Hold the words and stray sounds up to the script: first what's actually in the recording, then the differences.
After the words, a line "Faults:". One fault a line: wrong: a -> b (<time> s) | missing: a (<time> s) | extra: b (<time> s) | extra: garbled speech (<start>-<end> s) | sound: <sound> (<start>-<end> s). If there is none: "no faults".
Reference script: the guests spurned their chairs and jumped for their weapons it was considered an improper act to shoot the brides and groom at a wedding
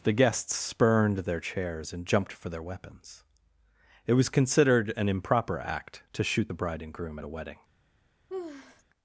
the guests spurned their chairs and jumped for their weapons it was considered an improper act to shoot the bride and groom at a wedding
Faults:
wrong: brides -> bride (6.5 s)
sound: sigh (8.3-8.8 s)